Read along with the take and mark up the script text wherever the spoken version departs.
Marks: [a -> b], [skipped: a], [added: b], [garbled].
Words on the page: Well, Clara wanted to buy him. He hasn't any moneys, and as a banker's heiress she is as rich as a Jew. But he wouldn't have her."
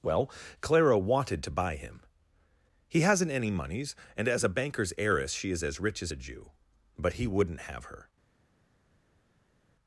Well, Clara wanted to buy him. He hasn't any moneys, and as a banker's heiress she is as rich as a Jew. But he wouldn't have her."